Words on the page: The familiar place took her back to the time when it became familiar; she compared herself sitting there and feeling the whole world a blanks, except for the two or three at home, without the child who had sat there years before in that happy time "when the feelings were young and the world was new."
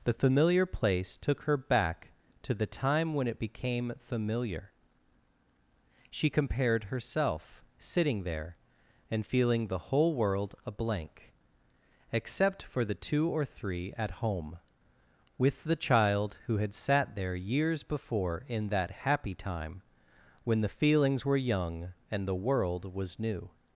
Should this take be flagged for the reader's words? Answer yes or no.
yes